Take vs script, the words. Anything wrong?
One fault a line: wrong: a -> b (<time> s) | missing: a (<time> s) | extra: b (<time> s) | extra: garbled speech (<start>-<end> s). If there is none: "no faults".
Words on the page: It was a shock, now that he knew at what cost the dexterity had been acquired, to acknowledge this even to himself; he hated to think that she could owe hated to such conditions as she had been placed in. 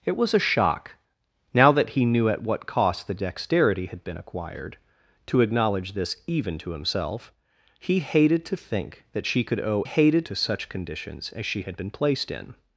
no faults